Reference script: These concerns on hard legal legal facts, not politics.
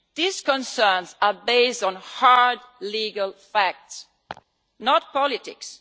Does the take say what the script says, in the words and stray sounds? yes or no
no